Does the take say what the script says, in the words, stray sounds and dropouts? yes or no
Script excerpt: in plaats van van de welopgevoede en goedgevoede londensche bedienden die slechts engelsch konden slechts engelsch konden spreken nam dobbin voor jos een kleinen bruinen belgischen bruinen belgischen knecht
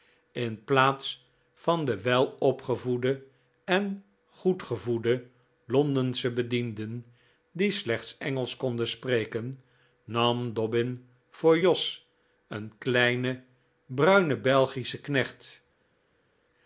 no